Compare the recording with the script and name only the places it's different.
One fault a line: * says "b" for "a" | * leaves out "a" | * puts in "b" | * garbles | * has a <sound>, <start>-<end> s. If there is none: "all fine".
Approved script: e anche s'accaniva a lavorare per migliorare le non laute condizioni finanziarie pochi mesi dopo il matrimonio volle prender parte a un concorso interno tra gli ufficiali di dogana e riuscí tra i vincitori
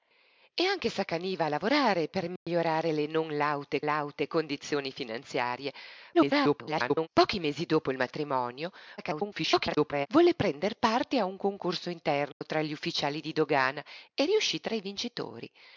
* has a dropout, 2.4-2.5 s
* puts in "laute"
* garbles
* garbles
* has a dropout, 12.3-12.4 s